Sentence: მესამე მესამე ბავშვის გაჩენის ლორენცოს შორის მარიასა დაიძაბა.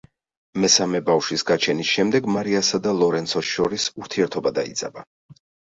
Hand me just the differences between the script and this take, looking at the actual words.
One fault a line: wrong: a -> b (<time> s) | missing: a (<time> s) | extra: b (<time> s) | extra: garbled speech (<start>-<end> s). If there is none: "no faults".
missing: მესამე (1.0 s)
extra: შემდეგ მარიასა და (2.0 s)
wrong: მარიასა -> ურთიერთობა (4.1 s)